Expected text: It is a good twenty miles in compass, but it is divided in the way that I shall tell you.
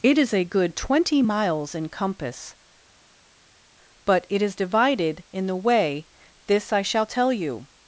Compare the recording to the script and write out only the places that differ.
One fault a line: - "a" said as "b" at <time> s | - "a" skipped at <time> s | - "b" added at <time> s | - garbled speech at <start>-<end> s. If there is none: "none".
- "that" said as "this" at 6.5 s